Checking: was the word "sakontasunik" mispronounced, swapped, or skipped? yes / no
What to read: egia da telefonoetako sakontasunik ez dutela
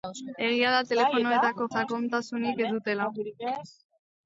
no